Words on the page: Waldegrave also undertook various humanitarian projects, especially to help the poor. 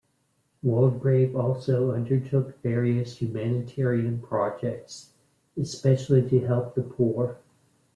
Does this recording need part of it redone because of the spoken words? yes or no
no